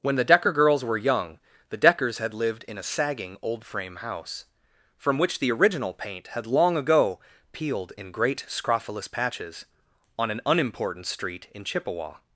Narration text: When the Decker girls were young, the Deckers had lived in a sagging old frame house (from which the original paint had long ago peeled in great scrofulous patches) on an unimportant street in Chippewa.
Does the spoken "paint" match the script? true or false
true